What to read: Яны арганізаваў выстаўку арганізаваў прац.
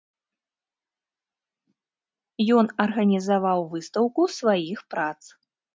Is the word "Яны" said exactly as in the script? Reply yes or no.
no